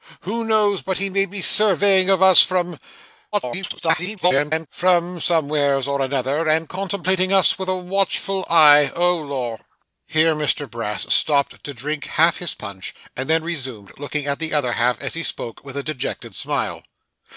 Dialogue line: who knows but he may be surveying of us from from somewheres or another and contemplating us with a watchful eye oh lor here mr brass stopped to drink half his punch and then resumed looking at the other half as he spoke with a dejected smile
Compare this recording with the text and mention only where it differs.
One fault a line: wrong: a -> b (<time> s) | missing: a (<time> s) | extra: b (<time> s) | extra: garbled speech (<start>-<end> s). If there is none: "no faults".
extra: garbled speech (3.3-4.7 s)